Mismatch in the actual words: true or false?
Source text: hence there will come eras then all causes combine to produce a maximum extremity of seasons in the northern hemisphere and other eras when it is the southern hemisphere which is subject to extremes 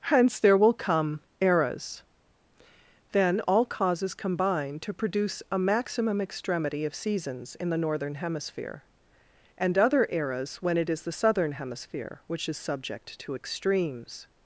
false